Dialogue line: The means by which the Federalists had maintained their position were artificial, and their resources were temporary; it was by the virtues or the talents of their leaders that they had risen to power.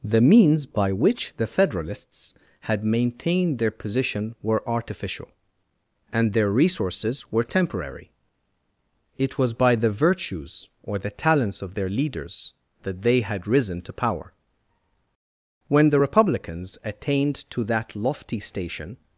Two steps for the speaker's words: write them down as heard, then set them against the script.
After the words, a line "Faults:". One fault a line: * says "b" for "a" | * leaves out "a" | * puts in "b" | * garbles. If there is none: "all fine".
The means by which the Federalists had maintained their position were artificial, and their resources were temporary; it was by the virtues or the talents of their leaders that they had risen to power. When the Republicans attained to that lofty station
Faults:
* puts in "When the Republicans attained to that lofty station"